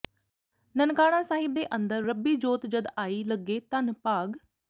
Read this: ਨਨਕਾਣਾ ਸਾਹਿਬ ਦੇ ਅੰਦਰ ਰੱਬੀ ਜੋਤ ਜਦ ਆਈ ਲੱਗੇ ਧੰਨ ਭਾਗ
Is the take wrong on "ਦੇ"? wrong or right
right